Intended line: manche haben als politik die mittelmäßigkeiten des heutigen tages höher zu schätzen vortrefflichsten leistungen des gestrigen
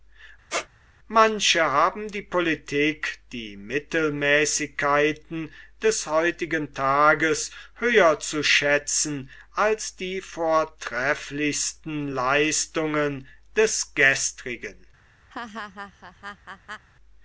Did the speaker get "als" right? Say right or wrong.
wrong